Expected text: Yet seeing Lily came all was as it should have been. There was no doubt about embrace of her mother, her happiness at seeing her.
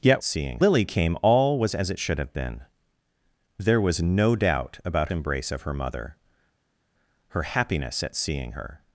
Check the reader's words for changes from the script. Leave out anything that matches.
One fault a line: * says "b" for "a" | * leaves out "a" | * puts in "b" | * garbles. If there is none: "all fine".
all fine